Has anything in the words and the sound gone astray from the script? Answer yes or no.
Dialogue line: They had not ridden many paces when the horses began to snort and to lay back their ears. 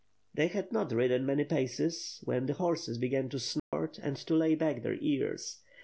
yes